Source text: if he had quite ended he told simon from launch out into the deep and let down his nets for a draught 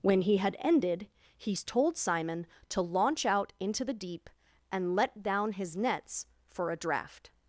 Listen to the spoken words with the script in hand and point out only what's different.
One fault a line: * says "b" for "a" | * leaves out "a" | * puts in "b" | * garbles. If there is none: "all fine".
* says "when" for "if"
* leaves out "quite"
* says "to" for "from"